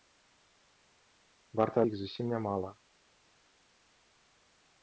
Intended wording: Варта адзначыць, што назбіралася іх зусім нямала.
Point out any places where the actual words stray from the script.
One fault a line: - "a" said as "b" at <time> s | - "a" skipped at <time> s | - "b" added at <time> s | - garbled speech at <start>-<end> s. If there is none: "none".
- "адзначыць што назбіралася" skipped at 1.8 s